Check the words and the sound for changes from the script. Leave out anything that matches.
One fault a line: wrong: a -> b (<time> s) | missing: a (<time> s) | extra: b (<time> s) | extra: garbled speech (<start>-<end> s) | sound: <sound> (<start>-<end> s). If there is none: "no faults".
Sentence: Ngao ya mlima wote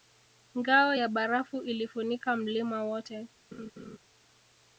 extra: barafu ilifunika (1.1 s)
sound: laugh (3.5-4.0 s)